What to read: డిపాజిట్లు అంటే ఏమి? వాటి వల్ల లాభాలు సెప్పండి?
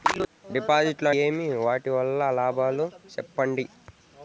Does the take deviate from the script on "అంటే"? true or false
true